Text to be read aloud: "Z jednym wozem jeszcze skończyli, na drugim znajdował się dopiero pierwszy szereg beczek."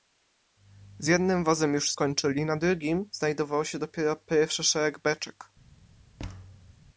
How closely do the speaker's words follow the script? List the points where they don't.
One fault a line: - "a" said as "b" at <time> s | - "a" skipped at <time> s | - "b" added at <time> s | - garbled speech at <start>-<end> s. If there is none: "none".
- "jeszcze" said as "już" at 1.7 s